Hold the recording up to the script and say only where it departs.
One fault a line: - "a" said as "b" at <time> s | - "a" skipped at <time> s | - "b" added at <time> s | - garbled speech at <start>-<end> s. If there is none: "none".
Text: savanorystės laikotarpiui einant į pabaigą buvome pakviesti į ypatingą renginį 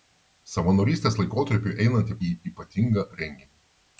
- "pabaigą buvome pakviesti" skipped at 2.2 s